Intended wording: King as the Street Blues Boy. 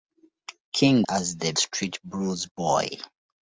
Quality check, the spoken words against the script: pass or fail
pass